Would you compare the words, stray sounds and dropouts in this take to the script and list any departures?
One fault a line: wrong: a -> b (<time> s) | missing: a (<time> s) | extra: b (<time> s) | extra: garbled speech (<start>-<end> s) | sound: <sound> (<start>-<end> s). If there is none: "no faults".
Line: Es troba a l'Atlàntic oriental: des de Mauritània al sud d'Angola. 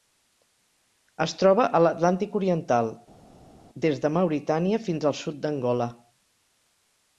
extra: fins (4.9 s)